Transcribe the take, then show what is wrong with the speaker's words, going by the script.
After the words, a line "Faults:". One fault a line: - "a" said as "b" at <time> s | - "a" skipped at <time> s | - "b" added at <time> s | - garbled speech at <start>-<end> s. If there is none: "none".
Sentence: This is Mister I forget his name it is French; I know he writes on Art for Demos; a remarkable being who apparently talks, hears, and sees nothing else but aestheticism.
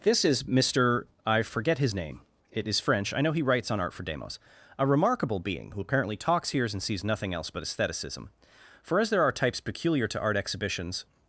This is Mister I forget his name it is French; I know he writes on Art for Demos; a remarkable being who apparently talks, hears, and sees nothing else but aestheticism. For as there are types peculiar to art exhibitions
Faults:
- "For as there are types peculiar to art exhibitions" added at 8.8 s